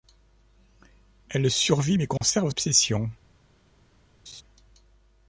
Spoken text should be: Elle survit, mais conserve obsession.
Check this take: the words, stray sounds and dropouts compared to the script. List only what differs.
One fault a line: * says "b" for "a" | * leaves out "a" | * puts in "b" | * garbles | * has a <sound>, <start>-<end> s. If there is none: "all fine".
* has a dropout, 2.2-2.2 s
* has a laugh, 4.3-4.4 s